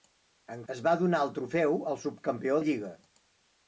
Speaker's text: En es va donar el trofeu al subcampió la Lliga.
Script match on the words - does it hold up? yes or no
yes